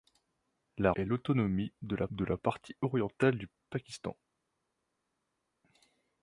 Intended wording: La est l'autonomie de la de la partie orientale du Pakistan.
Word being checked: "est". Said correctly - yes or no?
yes